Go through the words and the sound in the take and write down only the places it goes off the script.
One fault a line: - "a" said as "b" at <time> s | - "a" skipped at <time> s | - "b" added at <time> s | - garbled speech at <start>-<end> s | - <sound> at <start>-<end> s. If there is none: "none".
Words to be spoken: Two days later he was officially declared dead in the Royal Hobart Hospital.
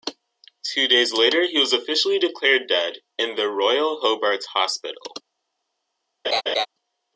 - laugh at 6.2-6.7 s